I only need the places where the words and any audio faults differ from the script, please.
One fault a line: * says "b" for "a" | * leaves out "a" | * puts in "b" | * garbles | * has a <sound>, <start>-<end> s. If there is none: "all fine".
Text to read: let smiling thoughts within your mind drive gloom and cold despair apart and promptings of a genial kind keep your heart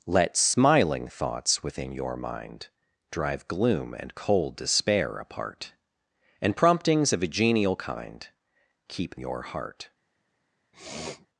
* has a sniff, 10.7-11.3 s